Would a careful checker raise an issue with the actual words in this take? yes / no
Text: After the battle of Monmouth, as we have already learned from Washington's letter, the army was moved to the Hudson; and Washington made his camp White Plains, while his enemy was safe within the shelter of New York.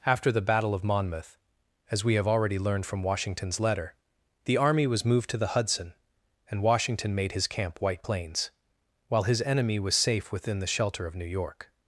no